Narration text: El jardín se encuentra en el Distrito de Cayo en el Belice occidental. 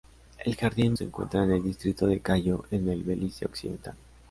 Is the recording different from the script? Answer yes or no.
no